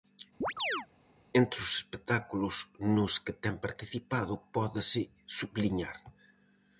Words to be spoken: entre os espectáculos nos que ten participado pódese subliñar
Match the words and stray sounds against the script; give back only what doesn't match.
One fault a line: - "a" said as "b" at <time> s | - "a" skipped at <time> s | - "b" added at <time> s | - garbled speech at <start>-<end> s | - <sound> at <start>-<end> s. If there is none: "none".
- chirp at 0.4-0.9 s